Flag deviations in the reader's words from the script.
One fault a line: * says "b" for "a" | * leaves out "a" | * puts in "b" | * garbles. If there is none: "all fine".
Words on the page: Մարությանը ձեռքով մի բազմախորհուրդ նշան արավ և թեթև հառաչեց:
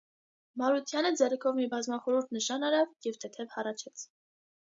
all fine